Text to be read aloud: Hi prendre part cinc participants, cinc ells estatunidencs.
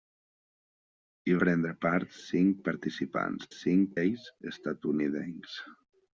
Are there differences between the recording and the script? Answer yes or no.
no